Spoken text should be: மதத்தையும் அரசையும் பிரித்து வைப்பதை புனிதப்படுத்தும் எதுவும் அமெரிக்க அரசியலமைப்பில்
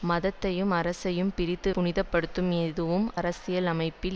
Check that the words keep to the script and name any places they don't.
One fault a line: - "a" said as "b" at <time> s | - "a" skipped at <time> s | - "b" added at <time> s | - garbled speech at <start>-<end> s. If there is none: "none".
- "வைப்பதை" skipped at 1.7 s
- "அமெரிக்க" skipped at 3.1 s